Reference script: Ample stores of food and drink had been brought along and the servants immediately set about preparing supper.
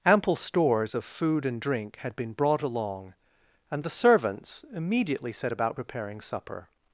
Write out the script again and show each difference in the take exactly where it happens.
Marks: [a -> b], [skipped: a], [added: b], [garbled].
Ample stores of food and drink had been brought along and the servants immediately set about preparing supper.